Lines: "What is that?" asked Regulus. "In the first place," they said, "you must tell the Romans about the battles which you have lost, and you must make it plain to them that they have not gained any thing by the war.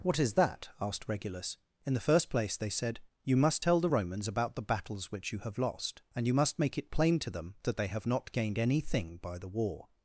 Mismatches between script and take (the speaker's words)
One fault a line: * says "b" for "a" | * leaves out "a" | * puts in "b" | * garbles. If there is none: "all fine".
all fine